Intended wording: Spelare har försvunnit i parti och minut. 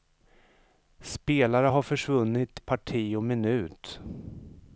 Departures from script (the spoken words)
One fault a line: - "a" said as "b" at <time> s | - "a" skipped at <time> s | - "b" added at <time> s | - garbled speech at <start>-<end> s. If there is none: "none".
- "i" skipped at 2.6 s